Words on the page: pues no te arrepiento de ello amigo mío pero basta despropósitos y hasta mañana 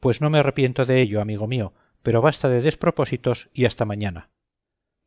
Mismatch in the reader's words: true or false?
true